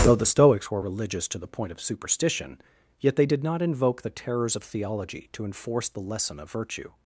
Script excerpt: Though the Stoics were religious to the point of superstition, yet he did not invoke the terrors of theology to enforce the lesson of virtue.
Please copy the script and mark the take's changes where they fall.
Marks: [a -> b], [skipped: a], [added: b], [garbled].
Though the Stoics were religious to the point of superstition, yet [he -> they] did not invoke the terrors of theology to enforce the lesson of virtue.